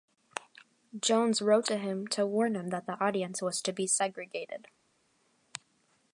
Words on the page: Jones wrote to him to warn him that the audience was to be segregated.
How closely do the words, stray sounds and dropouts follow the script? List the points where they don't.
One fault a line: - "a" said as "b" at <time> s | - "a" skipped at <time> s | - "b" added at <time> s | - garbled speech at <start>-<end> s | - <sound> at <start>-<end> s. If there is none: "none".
none